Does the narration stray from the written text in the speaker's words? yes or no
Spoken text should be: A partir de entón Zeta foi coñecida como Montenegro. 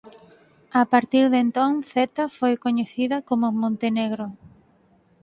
no